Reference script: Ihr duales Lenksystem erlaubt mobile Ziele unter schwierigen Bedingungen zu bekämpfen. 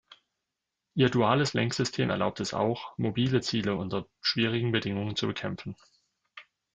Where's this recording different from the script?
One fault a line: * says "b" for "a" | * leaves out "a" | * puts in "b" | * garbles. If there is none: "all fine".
* puts in "es auch"